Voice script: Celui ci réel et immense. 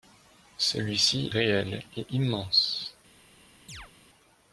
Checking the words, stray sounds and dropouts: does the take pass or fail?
fail